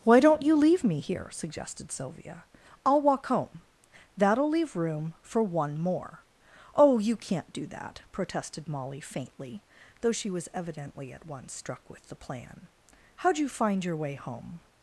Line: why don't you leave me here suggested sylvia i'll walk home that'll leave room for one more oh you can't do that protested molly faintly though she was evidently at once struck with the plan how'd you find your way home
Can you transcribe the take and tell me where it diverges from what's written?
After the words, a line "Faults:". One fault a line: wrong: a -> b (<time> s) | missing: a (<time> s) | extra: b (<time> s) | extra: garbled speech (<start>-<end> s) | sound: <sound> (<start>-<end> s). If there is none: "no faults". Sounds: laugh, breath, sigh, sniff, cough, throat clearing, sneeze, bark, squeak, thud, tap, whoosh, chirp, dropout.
why don't you leave me here suggested sylvia i'll walk home that'll leave room for one more oh you can't do that protested molly faintly though she was evidently at once struck with the plan how'd you find your way home
Faults:
no faults